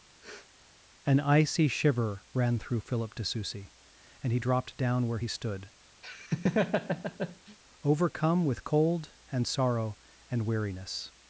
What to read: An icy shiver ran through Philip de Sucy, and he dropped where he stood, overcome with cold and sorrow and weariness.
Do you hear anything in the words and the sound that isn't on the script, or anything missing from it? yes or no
yes